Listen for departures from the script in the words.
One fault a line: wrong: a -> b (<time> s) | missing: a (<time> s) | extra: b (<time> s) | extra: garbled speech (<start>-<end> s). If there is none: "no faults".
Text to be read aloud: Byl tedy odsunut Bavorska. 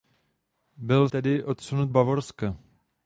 no faults